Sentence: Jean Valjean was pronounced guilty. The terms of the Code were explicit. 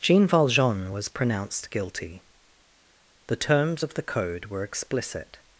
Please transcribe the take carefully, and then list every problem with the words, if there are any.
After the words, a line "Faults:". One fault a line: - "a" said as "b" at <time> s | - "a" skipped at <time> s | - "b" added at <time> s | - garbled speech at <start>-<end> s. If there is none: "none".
Jean Valjean was pronounced guilty. The terms of the Code were explicit.
Faults:
none